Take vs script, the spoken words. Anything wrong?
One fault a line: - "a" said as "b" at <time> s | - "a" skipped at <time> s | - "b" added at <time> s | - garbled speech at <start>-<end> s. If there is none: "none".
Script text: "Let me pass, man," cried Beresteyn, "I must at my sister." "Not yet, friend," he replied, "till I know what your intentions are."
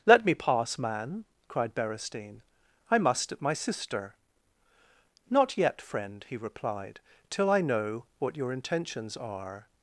none